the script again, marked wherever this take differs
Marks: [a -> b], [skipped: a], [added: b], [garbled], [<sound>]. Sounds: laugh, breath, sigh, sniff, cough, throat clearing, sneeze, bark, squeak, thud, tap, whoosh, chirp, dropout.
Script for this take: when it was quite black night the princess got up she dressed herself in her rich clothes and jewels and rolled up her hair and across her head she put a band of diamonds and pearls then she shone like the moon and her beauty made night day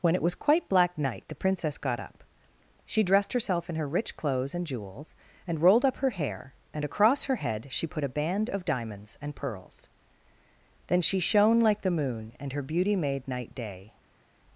when it was quite black night the princess got up she dressed herself in her rich clothes and jewels and rolled up her hair and across her head she put a band of diamonds and pearls then she shone like the moon and her beauty made night day